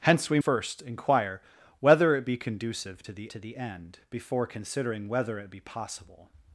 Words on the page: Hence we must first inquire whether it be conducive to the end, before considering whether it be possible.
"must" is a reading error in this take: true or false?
true